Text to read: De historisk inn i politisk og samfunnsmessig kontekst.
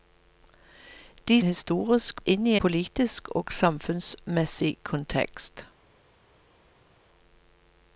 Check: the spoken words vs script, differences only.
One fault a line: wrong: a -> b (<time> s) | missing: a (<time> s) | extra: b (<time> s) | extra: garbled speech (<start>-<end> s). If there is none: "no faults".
no faults